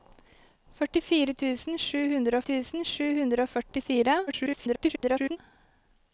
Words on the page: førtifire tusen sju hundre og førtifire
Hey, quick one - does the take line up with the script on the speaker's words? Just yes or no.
no